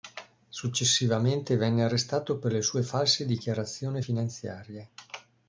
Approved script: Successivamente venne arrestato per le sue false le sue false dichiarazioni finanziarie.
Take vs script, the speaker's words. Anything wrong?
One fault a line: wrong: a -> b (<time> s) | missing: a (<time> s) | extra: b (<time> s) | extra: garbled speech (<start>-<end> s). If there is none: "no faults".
missing: le sue false (3.2 s)